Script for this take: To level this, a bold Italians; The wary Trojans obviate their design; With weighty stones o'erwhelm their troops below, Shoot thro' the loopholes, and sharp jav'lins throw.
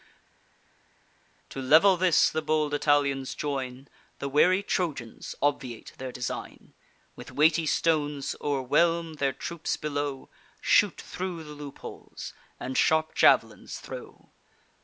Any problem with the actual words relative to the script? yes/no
yes